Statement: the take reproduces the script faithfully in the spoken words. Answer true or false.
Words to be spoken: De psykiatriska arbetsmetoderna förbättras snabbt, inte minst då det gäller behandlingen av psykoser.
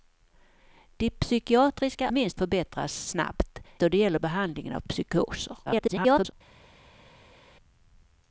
false